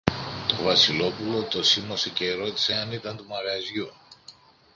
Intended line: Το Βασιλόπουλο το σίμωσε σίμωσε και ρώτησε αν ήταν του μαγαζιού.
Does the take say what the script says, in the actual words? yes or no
no